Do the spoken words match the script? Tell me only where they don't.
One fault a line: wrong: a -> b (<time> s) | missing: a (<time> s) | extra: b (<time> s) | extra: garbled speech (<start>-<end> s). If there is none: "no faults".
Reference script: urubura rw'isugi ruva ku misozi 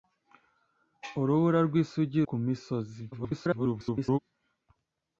missing: ruva (2.2 s)
extra: garbled speech (3.1-4.2 s)